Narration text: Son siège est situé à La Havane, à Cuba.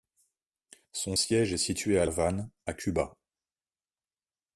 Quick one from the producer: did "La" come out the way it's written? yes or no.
no